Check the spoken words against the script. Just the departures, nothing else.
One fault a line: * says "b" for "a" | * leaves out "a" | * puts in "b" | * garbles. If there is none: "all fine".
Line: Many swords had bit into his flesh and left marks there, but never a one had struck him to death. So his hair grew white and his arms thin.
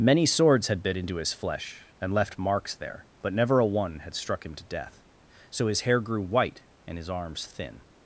all fine